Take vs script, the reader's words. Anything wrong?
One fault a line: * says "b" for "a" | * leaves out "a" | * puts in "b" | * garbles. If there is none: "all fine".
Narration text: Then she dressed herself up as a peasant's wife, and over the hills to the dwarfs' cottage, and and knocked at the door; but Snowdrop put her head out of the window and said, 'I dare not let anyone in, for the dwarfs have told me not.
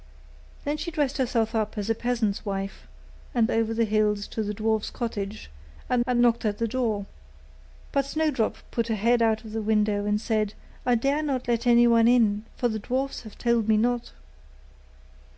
all fine